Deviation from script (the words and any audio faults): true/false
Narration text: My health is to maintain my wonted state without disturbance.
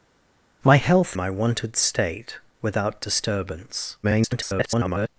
true